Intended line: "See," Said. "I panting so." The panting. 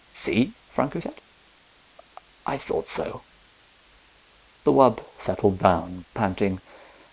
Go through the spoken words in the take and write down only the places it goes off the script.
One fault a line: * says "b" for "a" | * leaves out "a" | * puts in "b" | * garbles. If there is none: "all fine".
* puts in "Franco"
* says "thought" for "panting"
* puts in "wub settled down"